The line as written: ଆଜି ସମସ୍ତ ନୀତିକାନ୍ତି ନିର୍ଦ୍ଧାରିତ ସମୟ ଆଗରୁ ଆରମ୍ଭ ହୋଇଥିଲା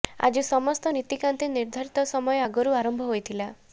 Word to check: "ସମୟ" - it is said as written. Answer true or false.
true